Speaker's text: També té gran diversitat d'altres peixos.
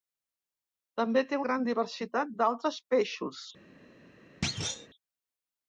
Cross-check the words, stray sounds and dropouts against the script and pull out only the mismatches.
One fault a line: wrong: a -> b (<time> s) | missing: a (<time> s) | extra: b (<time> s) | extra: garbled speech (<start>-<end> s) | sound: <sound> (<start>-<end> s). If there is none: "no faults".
sound: thud (4.4-4.9 s)